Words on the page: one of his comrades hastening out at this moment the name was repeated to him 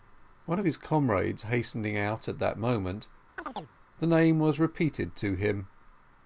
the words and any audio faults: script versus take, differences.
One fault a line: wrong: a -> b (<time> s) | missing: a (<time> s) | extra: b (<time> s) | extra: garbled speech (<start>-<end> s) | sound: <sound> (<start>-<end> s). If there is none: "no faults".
wrong: this -> that (2.4 s)
sound: chirp (3.4-3.7 s)